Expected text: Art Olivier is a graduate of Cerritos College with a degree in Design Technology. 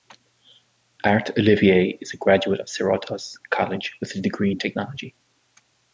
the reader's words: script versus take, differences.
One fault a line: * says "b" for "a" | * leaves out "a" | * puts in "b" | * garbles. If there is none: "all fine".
* leaves out "Design"